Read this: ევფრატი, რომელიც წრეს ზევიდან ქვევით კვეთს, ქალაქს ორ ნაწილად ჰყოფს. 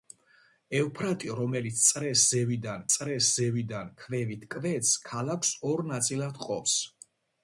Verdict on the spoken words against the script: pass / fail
fail